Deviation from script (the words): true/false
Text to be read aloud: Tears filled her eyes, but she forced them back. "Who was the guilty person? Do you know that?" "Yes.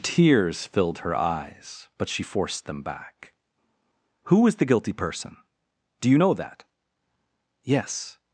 true